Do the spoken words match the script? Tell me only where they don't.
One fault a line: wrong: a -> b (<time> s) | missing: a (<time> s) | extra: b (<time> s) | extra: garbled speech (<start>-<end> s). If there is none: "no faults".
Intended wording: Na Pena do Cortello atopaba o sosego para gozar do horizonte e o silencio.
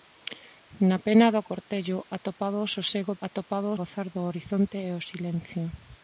wrong: para -> atopaba (3.3 s)